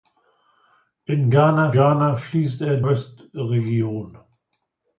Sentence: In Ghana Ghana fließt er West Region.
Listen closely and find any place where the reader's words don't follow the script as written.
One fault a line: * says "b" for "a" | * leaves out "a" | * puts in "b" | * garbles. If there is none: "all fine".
all fine